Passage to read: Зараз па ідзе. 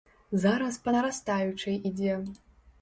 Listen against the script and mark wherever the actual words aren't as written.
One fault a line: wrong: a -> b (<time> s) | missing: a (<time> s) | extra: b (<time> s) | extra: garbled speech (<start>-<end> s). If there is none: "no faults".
extra: нарастаючай (0.9 s)